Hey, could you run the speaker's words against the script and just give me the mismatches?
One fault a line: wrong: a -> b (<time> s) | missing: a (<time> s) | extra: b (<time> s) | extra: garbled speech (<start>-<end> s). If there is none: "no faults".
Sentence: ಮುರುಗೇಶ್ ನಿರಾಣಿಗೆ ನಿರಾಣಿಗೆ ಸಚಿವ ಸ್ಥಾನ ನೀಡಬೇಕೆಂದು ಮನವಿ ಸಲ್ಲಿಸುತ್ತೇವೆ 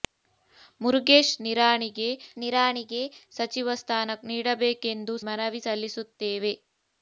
no faults